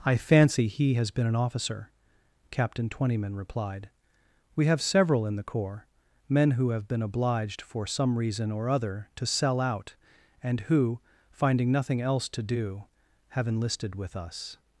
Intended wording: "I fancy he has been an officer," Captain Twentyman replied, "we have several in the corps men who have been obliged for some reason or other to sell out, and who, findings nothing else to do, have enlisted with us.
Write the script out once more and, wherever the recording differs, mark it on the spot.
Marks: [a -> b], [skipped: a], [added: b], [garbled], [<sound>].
"I fancy he has been an officer," Captain Twentyman replied, "we have several in the corps men who have been obliged for some reason or other to sell out, and who, [findings -> finding] nothing else to do, have enlisted with us.